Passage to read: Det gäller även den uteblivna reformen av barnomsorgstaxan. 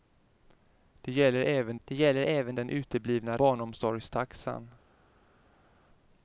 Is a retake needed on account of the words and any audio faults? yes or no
yes